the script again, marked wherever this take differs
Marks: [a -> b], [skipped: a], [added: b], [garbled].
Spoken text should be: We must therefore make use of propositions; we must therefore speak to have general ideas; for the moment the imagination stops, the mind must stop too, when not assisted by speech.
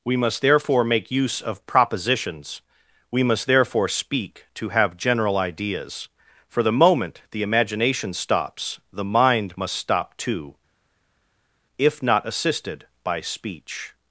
We must therefore make use of propositions; we must therefore speak to have general ideas; for the moment the imagination stops, the mind must stop too, [when -> if] not assisted by speech.